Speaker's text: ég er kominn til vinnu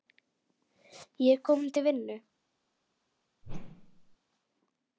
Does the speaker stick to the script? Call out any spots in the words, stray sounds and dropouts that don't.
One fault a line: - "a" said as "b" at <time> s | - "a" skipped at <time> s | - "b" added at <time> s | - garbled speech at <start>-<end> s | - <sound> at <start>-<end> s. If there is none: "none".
- whoosh at 3.4-4.2 s